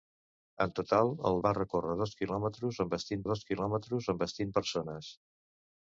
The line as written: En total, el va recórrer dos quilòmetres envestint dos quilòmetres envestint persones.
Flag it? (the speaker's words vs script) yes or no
no